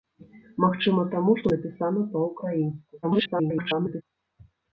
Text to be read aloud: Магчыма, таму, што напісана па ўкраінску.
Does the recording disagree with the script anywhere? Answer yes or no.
yes